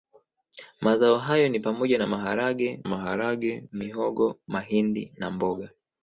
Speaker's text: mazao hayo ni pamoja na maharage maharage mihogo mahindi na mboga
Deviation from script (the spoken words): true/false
false